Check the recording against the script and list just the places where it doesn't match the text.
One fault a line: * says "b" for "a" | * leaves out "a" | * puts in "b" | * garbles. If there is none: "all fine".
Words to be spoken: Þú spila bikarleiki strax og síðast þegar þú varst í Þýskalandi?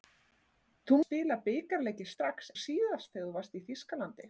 all fine